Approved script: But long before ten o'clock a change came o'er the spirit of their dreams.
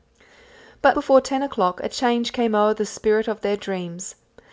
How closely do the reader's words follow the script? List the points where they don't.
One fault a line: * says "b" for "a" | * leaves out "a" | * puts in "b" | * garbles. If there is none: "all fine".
* leaves out "long"